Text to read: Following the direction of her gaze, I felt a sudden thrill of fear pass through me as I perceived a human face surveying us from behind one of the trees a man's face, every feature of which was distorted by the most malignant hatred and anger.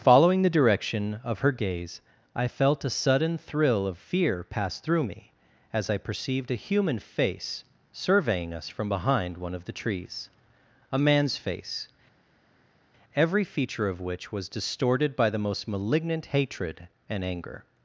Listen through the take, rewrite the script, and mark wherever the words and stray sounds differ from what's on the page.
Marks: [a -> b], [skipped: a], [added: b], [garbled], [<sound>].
Following the direction of her gaze, I felt a sudden thrill of fear pass through me as I perceived a human face surveying us from behind one of the trees a man's face, every feature of which was distorted by the most malignant hatred and anger.